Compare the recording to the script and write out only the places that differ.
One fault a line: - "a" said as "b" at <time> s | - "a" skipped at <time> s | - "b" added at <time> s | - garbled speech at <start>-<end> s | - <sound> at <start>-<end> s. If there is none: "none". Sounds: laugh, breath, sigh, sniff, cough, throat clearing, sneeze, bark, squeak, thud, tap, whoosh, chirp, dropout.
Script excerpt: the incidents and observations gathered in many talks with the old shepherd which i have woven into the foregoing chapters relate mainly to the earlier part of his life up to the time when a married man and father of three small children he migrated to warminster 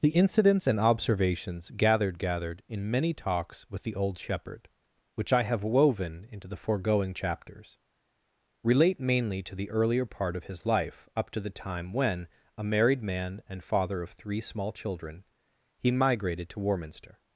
- "gathered" added at 2.2 s